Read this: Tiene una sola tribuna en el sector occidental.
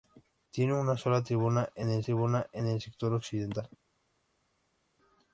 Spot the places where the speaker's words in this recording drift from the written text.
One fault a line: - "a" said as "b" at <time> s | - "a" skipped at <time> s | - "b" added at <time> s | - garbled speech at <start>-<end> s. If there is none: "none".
- "tribuna en el" added at 2.0 s